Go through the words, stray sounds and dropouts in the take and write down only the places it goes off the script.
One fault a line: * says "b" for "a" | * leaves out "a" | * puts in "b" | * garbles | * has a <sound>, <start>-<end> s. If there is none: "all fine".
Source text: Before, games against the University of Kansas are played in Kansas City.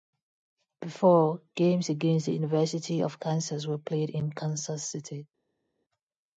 * says "were" for "are"